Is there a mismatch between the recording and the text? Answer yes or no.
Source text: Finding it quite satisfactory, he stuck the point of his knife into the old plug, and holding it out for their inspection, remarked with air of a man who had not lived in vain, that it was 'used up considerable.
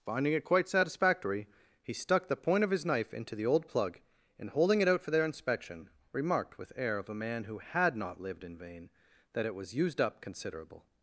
no